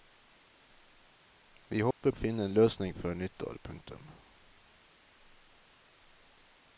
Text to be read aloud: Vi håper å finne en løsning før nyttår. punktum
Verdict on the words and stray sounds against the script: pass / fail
fail